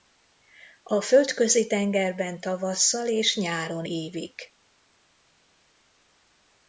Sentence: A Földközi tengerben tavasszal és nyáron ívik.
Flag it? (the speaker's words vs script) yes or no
no